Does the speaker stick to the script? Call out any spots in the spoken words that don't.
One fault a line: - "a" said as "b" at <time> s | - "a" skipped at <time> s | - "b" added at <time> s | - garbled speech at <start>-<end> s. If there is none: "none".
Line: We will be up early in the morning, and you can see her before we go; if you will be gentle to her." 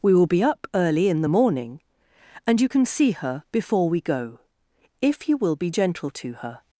none